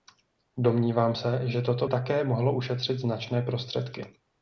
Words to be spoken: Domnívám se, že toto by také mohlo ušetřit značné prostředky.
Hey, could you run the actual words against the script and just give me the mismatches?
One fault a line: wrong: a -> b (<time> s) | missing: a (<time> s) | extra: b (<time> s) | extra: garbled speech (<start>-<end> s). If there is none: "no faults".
missing: by (1.9 s)